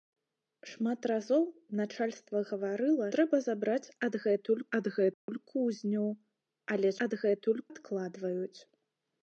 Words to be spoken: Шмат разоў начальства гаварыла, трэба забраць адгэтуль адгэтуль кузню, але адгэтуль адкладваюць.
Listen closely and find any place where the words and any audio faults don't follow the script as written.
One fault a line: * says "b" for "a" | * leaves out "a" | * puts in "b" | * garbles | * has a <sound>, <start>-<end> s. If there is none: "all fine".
* has a dropout, 5.1-5.3 s